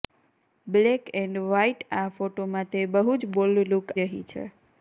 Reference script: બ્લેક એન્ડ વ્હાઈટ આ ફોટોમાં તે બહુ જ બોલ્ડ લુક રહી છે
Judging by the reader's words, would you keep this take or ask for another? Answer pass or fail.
pass